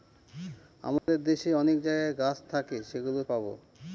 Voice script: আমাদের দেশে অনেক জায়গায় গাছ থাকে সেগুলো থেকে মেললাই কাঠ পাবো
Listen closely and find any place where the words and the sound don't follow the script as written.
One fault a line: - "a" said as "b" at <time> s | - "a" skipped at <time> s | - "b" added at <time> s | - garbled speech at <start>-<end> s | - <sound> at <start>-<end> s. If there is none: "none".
- dropout at 1.0-1.1 s
- "থেকে মেললাই কাঠ" skipped at 3.2 s